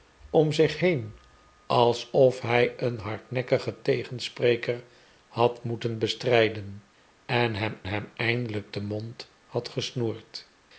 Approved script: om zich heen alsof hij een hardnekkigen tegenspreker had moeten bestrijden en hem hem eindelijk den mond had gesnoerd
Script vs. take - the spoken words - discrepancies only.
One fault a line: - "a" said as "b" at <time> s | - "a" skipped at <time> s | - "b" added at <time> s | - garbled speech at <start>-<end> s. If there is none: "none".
none